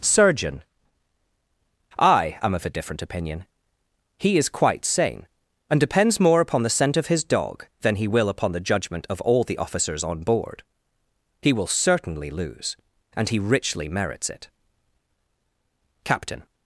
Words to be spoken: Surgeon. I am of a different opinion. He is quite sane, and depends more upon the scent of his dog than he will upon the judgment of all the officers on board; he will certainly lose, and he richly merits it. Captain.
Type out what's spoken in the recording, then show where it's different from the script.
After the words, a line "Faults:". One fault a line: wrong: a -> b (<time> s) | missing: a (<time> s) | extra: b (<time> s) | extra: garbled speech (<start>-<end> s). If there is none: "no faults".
Surgeon. I am of a different opinion. He is quite sane, and depends more upon the scent of his dog than he will upon the judgment of all the officers on board; he will certainly lose, and he richly merits it. Captain.
Faults:
no faults